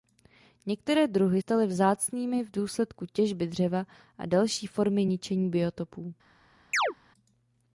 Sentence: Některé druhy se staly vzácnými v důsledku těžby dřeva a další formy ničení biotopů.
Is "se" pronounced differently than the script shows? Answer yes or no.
yes